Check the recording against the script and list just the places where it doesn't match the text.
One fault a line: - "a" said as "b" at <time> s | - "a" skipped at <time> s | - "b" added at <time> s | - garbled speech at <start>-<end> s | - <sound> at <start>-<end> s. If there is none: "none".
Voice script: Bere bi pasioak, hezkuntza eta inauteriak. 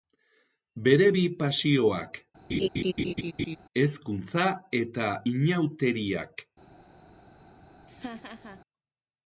- laugh at 2.5-3.6 s
- laugh at 7.9-8.6 s